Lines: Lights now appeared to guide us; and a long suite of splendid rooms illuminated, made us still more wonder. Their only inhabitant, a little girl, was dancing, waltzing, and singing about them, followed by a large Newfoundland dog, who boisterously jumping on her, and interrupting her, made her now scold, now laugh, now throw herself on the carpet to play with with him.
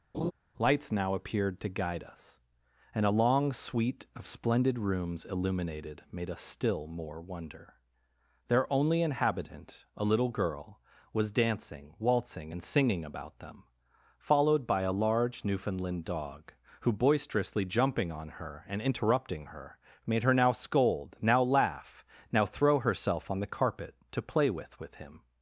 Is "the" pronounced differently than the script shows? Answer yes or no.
no